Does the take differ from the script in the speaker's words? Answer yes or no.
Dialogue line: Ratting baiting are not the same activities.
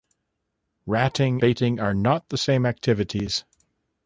no